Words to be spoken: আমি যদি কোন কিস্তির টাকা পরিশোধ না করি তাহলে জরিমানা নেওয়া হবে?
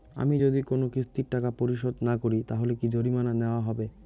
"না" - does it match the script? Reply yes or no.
yes